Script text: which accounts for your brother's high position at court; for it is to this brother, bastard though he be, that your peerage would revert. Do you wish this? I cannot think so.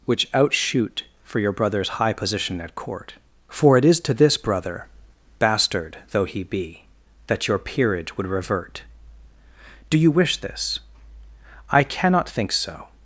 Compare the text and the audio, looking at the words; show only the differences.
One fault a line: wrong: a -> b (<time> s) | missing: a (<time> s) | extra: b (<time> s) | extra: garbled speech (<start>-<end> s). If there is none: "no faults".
wrong: accounts -> outshoot (0.3 s)